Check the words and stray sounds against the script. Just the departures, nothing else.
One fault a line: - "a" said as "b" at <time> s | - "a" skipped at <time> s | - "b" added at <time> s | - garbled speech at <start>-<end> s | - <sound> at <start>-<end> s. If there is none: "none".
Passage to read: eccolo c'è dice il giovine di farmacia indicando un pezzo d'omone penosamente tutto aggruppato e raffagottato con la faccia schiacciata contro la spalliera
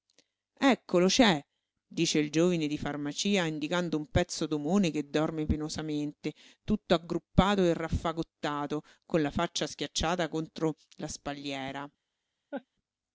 - "che dorme" added at 4.9 s
- laugh at 12.5-12.7 s